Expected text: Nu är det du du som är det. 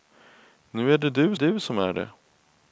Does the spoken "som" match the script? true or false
true